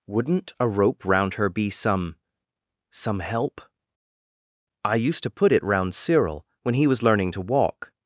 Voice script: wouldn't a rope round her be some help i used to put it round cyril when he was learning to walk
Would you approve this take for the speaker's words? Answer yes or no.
no